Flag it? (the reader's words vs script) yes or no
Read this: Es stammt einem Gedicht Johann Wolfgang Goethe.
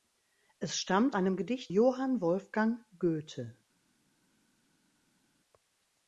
no